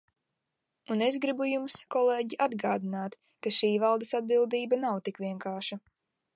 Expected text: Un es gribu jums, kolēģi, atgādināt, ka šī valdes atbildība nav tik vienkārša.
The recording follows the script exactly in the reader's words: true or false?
true